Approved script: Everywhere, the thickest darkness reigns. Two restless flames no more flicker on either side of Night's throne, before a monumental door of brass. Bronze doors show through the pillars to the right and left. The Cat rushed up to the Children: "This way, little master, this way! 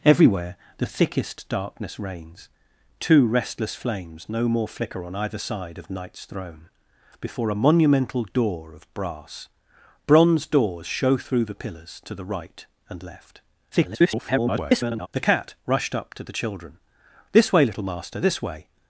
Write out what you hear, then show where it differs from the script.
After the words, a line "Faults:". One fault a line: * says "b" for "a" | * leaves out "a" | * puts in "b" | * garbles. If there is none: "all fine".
Everywhere, the thickest darkness reigns. Two restless flames no more flicker on either side of Night's throne, before a monumental door of brass. Bronze doors show through the pillars to the right and left. [garbled] The Cat rushed up to the Children: "This way, little master, this way!
Faults:
* garbles